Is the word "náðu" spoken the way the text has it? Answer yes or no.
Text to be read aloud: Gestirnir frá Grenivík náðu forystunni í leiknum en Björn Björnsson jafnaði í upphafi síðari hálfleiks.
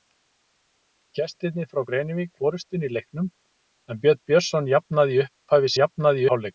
no